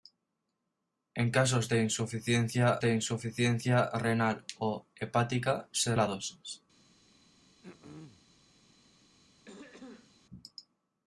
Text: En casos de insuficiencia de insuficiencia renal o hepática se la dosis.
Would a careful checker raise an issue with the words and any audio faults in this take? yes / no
yes